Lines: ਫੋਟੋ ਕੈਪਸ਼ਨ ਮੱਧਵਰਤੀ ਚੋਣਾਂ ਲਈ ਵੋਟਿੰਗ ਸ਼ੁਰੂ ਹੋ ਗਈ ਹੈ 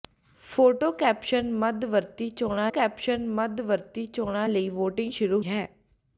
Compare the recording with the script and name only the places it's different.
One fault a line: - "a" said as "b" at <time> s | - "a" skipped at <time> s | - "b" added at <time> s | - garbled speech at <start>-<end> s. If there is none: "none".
- "ਕੈਪਸ਼ਨ ਮੱਧਵਰਤੀ ਚੋਣਾਂ" added at 2.7 s
- "ਹੋ ਗਈ" skipped at 5.4 s